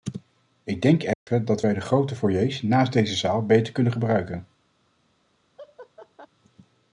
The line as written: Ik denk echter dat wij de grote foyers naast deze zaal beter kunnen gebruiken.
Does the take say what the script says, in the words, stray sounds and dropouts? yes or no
no